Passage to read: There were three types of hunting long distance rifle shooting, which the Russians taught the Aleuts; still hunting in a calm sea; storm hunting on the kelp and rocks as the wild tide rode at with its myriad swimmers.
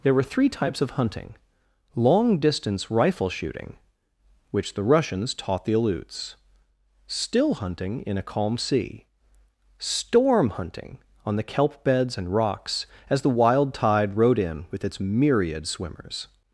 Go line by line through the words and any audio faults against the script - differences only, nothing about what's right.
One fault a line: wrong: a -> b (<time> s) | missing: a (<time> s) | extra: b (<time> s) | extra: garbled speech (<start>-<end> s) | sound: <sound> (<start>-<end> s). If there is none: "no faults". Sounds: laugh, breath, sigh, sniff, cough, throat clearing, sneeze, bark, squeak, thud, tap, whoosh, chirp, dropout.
extra: beds (11.8 s)
wrong: at -> in (14.4 s)